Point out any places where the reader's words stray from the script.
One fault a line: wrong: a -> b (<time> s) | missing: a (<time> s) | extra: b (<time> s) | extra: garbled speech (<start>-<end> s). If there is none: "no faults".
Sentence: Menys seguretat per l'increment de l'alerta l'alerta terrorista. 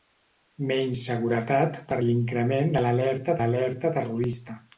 no faults